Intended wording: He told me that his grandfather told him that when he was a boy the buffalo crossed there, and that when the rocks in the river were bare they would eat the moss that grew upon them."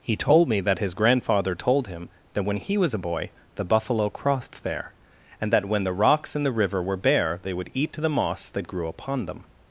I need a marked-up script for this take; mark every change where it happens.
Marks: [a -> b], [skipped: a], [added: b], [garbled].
He told me that his grandfather told him that when he was a boy the buffalo crossed there, and that when the rocks in the river were bare they would eat the moss that grew upon them."